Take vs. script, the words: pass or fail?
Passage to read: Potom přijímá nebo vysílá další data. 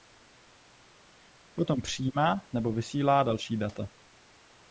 pass